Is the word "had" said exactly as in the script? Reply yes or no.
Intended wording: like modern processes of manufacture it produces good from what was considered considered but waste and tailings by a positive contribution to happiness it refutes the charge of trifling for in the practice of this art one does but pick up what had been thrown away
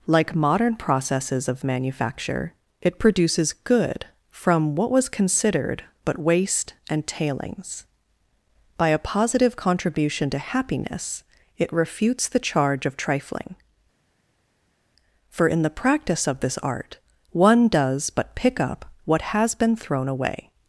no